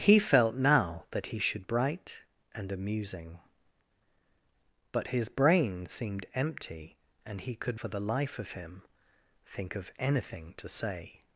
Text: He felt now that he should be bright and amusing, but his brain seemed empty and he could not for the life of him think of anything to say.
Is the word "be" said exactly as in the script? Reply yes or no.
no